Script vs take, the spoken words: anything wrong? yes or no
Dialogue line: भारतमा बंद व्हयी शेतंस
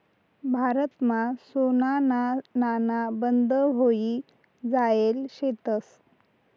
yes